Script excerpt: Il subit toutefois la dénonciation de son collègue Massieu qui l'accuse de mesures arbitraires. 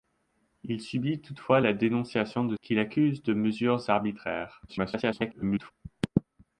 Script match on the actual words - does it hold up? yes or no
no